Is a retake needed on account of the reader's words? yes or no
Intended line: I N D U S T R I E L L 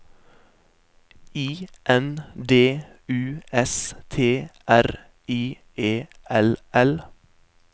no